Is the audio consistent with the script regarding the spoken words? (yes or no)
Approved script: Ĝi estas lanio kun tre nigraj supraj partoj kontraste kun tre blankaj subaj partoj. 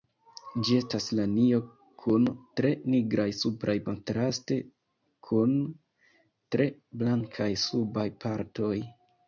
no